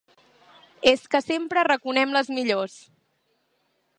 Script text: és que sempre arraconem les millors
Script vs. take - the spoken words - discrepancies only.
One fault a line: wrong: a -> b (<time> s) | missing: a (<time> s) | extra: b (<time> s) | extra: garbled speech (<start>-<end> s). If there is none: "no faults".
no faults